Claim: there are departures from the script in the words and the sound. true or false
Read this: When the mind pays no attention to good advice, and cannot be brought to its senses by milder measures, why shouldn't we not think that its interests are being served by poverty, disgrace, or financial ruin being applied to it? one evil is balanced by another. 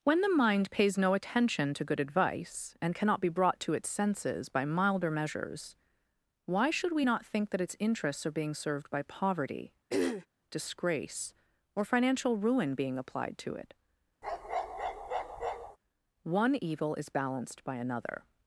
true